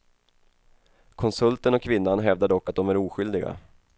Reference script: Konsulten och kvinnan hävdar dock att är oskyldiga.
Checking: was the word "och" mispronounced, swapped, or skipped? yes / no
no